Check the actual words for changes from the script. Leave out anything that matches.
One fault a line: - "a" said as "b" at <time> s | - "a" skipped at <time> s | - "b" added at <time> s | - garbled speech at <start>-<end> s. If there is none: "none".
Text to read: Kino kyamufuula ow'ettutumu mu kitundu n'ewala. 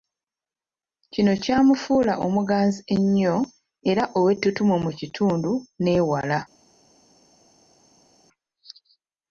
- "omuganzi ennyo era" added at 2.2 s